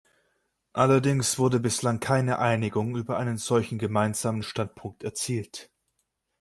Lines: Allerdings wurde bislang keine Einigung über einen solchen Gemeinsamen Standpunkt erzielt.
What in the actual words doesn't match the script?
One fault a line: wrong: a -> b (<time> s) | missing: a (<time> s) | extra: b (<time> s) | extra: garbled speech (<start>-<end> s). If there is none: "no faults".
no faults